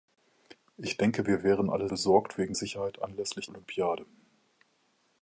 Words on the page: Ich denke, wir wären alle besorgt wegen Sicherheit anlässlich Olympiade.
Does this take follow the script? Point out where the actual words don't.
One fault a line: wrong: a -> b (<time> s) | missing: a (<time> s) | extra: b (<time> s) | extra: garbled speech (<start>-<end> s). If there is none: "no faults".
no faults